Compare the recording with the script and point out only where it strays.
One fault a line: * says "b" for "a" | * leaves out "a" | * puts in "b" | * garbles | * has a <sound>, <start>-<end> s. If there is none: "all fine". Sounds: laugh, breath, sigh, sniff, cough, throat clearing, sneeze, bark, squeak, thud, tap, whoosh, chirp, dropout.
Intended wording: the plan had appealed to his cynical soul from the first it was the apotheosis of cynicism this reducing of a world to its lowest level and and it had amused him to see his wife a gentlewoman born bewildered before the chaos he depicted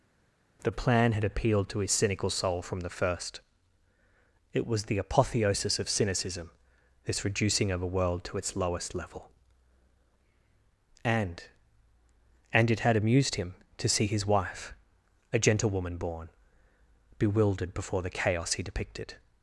all fine